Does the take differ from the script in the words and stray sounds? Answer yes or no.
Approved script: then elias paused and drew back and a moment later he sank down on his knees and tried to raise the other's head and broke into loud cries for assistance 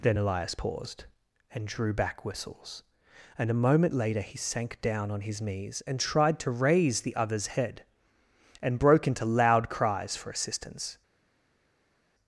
yes